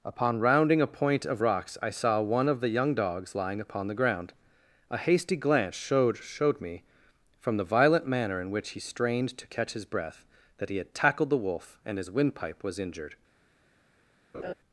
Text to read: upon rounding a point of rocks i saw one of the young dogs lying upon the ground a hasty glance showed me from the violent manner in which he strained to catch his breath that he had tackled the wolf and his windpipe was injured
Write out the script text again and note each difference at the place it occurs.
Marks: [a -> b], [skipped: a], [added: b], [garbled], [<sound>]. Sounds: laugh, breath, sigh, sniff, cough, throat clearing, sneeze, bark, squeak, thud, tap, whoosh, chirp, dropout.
upon rounding a point of rocks i saw one of the young dogs lying upon the ground a hasty glance showed [added: showed] me from the violent manner in which he strained to catch his breath that he had tackled the wolf and his windpipe was injured [laugh]